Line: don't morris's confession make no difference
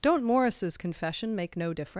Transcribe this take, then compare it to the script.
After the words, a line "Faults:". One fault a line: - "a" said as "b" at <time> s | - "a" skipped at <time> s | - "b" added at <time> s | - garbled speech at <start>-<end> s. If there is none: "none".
don't morris's confession make no difference
Faults:
none